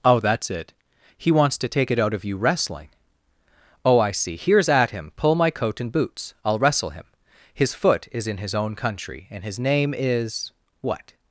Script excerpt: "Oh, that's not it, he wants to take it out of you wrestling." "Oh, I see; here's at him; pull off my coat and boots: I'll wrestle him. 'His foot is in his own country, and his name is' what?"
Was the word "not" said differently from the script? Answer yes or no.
yes